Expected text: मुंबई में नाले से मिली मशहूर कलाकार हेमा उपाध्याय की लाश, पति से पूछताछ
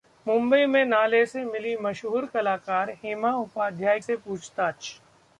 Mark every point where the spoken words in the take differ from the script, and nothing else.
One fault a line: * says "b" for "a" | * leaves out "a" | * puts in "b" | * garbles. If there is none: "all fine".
* leaves out "की लाश पति"